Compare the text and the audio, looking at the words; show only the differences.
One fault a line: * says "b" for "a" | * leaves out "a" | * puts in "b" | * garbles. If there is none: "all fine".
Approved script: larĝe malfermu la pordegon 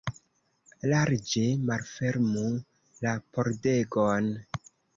all fine